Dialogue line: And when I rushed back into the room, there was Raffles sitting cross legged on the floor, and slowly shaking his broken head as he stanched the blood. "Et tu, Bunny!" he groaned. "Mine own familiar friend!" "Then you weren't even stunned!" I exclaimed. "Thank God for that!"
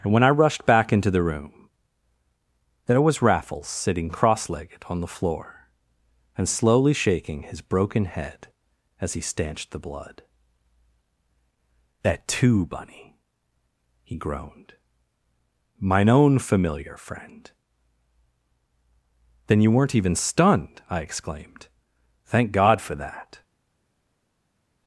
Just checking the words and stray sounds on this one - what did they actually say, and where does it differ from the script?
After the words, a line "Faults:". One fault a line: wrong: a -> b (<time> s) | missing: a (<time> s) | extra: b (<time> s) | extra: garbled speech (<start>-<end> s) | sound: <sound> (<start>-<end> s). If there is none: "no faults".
And when I rushed back into the room, there was Raffles sitting cross legged on the floor, and slowly shaking his broken head as he stanched the blood. "That too, Bunny!" he groaned. "Mine own familiar friend!" "Then you weren't even stunned!" I exclaimed. "Thank God for that!"
Faults:
wrong: Et tu -> That too (12.0 s)